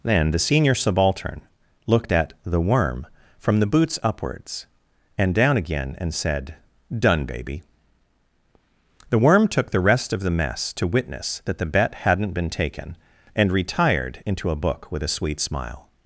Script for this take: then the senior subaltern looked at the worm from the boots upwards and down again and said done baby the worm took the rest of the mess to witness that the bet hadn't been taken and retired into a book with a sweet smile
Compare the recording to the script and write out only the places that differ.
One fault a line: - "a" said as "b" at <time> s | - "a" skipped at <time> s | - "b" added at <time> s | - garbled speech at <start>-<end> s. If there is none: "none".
none